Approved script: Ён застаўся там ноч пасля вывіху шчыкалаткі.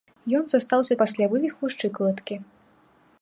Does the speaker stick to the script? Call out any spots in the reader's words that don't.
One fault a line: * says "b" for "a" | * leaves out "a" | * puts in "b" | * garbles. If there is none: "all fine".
* leaves out "там ноч"